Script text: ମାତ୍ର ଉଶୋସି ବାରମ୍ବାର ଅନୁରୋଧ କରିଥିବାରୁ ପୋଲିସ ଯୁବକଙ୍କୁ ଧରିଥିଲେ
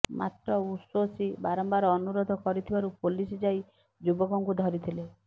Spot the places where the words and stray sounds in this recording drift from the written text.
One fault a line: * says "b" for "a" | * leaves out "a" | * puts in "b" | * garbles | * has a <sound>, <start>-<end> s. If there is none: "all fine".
* puts in "ଯାଇ"